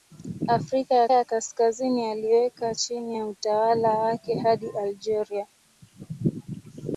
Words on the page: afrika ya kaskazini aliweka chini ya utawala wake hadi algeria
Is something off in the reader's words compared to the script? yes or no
yes